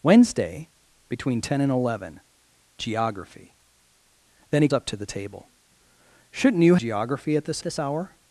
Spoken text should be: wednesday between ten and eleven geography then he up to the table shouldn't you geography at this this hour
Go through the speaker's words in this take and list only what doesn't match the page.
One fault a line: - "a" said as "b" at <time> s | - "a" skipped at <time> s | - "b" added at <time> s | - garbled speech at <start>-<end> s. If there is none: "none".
none